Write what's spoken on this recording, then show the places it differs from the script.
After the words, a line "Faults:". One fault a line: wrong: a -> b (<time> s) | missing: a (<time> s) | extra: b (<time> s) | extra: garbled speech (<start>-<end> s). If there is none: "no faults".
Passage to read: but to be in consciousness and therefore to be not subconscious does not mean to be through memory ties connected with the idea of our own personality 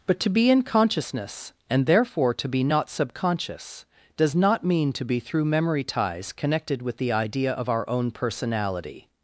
but to be in consciousness and therefore to be not subconscious does not mean to be through memory ties connected with the idea of our own personality
Faults:
no faults